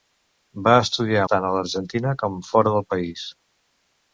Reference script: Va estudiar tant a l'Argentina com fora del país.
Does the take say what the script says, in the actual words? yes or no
yes